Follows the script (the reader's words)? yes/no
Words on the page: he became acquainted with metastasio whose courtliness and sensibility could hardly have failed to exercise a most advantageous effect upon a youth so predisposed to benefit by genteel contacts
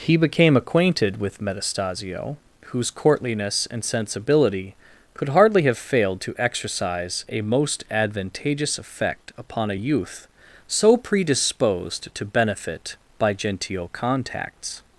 yes